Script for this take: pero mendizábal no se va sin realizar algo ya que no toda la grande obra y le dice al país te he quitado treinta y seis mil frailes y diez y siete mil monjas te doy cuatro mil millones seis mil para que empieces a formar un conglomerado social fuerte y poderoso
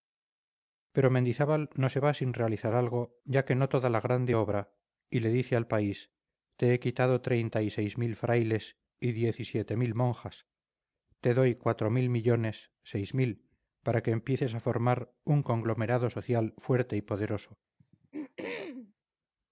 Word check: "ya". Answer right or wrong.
right